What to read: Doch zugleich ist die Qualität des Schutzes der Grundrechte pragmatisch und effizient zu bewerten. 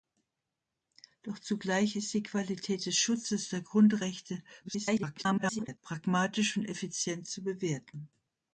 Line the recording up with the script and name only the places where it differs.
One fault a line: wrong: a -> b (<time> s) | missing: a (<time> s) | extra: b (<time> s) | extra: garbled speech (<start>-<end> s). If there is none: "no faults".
extra: garbled speech (4.6-5.8 s)